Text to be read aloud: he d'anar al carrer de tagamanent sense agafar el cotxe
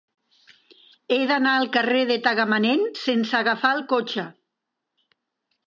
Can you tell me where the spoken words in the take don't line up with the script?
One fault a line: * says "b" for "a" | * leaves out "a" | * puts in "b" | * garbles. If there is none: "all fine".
all fine